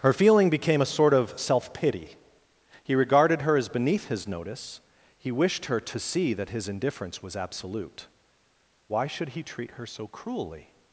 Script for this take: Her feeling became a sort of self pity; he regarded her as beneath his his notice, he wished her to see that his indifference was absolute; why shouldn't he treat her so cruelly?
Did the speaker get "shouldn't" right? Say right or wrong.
wrong